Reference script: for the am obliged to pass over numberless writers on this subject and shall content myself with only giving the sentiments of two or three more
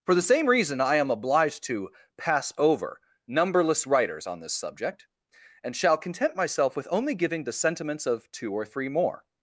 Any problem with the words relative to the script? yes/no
yes